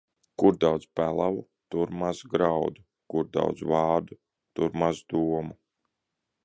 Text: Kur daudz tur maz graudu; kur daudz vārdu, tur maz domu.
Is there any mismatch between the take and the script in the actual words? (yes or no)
yes